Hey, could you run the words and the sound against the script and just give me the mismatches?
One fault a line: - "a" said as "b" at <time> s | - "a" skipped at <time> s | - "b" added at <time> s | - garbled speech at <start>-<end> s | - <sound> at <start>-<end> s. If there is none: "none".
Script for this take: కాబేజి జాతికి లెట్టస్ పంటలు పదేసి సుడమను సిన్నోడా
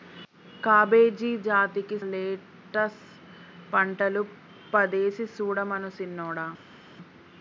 none